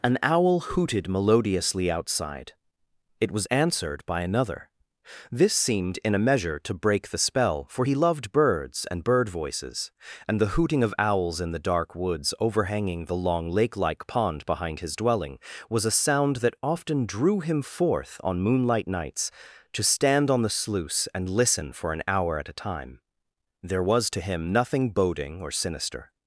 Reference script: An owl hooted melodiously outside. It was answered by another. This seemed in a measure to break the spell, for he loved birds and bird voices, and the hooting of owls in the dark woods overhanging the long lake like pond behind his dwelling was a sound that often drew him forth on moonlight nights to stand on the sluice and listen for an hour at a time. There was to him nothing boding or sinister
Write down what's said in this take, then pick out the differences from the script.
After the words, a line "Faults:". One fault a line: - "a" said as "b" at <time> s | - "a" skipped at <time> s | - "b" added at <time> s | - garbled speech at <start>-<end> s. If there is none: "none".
An owl hooted melodiously outside. It was answered by another. This seemed in a measure to break the spell, for he loved birds and bird voices, and the hooting of owls in the dark woods overhanging the long lake like pond behind his dwelling was a sound that often drew him forth on moonlight nights to stand on the sluice and listen for an hour at a time. There was to him nothing boding or sinister
Faults:
none